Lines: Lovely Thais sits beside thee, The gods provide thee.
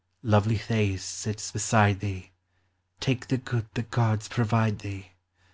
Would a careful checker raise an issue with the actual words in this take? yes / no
yes